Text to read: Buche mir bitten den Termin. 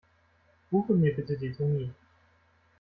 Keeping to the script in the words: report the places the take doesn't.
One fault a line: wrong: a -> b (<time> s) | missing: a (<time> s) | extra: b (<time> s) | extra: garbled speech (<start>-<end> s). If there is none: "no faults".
no faults